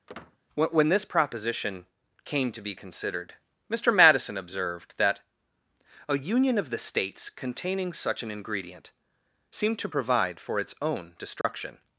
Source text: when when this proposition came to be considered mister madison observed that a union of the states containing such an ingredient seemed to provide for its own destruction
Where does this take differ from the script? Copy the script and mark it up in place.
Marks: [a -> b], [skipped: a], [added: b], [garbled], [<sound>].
[squeak] when when this proposition came to be considered mister madison observed that a union of the states containing such an ingredient seemed to provide for its own destruction [dropout]